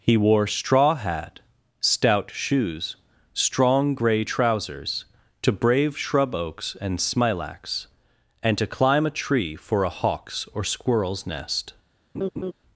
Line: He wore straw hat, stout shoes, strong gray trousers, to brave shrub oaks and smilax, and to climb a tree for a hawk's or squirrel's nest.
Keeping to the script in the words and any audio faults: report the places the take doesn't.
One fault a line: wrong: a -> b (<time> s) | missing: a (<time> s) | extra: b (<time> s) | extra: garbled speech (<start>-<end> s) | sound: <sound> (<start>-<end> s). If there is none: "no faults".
sound: laugh (12.1-12.5 s)